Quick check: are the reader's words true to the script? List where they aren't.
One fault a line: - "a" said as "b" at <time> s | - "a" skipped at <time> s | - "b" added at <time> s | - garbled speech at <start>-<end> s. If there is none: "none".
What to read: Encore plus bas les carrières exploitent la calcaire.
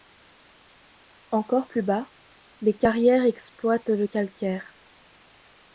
- "la" said as "le" at 3.9 s